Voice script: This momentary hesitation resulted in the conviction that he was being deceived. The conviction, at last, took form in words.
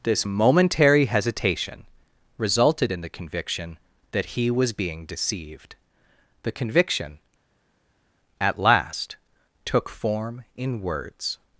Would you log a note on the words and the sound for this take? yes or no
no